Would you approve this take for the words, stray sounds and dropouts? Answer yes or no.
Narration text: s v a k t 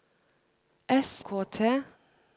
no